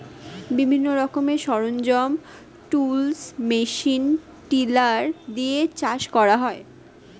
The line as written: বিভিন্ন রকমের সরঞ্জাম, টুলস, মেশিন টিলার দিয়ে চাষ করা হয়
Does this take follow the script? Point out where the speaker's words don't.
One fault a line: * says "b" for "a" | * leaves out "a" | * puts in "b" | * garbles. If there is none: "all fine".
all fine